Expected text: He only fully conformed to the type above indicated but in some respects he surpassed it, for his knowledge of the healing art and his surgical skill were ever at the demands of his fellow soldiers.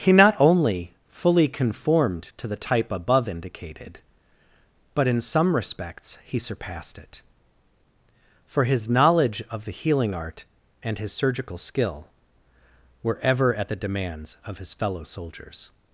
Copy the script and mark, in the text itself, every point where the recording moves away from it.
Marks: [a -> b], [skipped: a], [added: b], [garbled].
He [added: not] only fully conformed to the type above indicated but in some respects he surpassed it, for his knowledge of the healing art and his surgical skill were ever at the demands of his fellow soldiers.